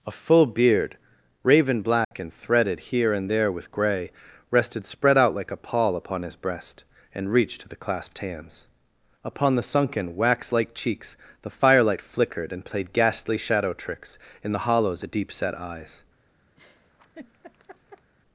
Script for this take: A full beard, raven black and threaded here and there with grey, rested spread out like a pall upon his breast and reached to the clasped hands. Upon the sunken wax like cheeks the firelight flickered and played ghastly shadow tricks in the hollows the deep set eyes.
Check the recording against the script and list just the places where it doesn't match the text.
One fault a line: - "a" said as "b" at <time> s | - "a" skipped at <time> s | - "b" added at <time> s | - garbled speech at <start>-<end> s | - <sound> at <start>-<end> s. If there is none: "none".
- dropout at 2.0-2.1 s
- laugh at 16.6-18.1 s